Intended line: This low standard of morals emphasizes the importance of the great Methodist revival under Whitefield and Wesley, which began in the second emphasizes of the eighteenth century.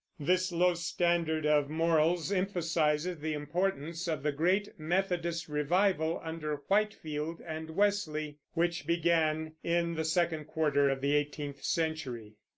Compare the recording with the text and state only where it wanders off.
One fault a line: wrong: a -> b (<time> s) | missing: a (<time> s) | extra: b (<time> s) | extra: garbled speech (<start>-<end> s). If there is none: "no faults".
wrong: emphasizes -> quarter (10.4 s)